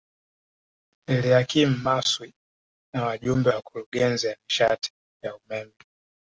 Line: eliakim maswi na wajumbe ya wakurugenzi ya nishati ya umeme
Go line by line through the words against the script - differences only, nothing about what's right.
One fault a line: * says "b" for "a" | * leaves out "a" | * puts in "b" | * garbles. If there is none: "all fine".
all fine